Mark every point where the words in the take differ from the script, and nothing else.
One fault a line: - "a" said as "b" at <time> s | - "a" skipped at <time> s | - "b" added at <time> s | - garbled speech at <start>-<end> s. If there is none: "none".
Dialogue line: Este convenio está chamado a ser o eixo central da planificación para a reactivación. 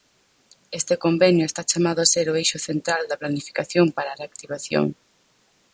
none